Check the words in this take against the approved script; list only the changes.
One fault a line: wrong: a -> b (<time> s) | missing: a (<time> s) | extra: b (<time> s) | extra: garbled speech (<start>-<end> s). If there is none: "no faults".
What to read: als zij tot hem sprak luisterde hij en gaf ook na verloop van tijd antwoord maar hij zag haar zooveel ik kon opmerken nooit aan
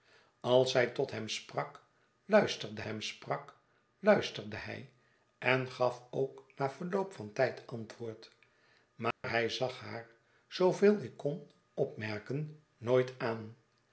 extra: hem sprak luisterde (2.8 s)